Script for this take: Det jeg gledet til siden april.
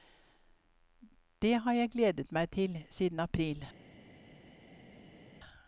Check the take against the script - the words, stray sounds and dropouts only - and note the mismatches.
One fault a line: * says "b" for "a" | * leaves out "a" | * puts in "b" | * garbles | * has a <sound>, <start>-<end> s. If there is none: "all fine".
* puts in "har"
* puts in "meg"